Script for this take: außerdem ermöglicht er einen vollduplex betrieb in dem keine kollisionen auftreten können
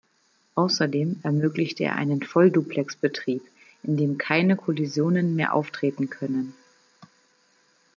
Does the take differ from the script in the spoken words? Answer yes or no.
yes